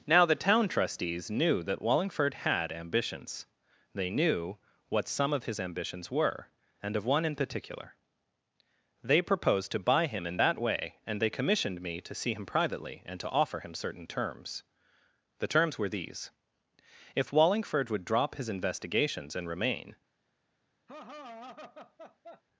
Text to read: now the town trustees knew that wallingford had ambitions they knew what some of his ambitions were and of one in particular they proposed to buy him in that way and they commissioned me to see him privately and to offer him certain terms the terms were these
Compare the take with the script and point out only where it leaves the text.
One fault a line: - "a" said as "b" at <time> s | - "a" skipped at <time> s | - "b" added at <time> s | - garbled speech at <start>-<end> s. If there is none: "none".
- "if wallingford would drop his investigations and remain" added at 17.1 s